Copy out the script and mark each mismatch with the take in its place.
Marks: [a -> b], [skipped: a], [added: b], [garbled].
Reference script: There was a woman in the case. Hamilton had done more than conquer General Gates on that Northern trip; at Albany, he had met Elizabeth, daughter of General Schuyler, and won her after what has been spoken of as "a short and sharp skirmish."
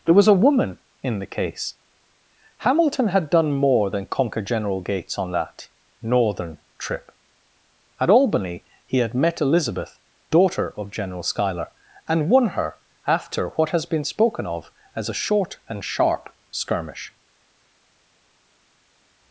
There was a woman in the case. Hamilton had done more than conquer General Gates on that Northern trip; at Albany, he had met Elizabeth, daughter of General Schuyler, and won her after what has been spoken of as "a short and sharp skirmish."